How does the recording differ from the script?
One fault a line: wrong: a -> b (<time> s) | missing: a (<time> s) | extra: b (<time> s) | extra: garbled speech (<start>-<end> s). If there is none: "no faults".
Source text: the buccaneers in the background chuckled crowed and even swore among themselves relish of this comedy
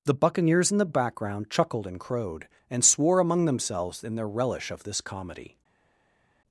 extra: and (1.9 s)
missing: even (2.8 s)
extra: in their (4.0 s)